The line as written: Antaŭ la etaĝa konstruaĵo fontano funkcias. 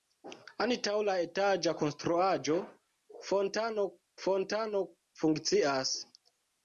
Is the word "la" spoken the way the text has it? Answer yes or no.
yes